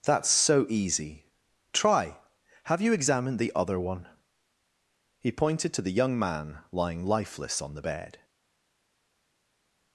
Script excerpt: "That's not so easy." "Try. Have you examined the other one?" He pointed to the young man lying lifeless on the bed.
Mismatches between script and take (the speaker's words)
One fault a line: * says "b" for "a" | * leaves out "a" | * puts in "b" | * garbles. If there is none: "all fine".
* leaves out "not"